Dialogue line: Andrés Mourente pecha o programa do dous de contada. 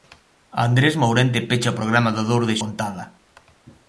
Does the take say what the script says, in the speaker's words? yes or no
yes